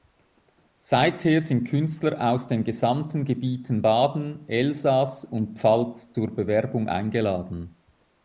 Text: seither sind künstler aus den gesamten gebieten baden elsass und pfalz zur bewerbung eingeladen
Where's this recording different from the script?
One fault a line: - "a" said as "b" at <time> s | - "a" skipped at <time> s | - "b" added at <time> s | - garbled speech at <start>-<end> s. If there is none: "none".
none